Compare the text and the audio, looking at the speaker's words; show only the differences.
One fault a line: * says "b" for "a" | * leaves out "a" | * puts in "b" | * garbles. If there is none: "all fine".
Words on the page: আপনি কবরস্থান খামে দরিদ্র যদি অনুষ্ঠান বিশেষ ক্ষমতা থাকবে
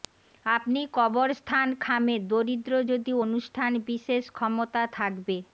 all fine